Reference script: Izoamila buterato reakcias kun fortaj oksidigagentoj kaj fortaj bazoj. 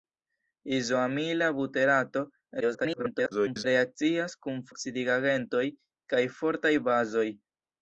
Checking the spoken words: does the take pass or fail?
fail